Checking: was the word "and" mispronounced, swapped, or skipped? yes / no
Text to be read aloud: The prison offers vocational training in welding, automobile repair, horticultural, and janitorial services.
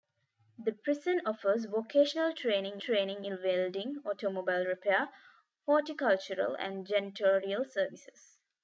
no